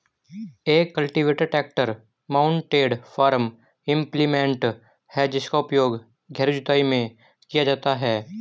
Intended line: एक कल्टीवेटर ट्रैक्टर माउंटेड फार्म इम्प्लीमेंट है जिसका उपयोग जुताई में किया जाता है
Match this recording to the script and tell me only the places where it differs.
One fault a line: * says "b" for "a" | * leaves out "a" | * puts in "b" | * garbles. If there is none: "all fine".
* puts in "गहरी"